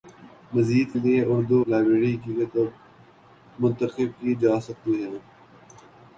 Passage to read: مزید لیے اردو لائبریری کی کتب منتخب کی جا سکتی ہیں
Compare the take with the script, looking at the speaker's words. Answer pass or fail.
pass